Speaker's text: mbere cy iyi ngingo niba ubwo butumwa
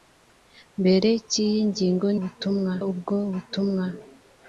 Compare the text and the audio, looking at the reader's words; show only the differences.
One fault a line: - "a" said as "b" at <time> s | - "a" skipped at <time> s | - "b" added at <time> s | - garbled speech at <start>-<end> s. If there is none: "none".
- "niba" said as "butumwa" at 2.2 s